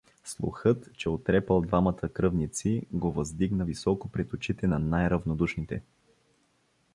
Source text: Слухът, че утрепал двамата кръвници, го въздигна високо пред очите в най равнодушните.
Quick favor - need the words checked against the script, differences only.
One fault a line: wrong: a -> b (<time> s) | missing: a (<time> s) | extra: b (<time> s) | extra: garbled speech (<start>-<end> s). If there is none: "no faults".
wrong: в -> на (4.7 s)